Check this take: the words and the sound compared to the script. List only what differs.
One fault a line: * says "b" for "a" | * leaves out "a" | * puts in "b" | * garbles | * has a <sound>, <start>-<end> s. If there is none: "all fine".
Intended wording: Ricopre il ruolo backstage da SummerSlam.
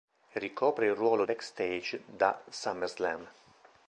all fine